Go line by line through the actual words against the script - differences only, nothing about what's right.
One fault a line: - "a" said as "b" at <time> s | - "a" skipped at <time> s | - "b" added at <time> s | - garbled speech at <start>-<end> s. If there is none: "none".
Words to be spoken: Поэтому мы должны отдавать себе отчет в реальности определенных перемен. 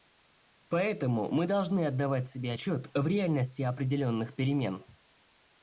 none